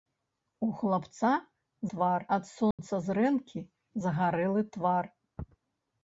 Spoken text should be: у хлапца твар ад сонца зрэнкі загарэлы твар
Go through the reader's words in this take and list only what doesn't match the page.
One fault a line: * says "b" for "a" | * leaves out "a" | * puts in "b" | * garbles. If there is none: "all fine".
all fine